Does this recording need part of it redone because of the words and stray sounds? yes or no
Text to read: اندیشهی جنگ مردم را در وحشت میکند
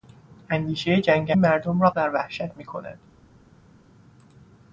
no